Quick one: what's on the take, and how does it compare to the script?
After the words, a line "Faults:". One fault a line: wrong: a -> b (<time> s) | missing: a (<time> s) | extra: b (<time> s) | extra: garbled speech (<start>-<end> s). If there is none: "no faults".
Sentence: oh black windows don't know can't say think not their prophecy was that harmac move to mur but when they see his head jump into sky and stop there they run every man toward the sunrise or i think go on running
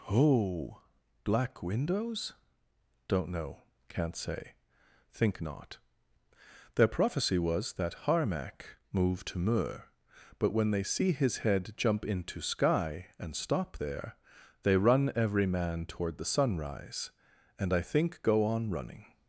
oh black windows don't know can't say think not their prophecy was that harmac move to mur but when they see his head jump into sky and stop there they run every man toward the sunrise and i think go on running
Faults:
wrong: or -> and (17.6 s)